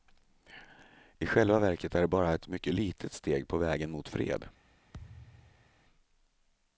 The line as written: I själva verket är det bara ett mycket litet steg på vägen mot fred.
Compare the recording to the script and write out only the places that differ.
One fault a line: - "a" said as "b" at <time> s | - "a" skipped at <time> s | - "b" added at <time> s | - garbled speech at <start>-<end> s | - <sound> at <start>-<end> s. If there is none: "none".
- thud at 4.9-5.8 s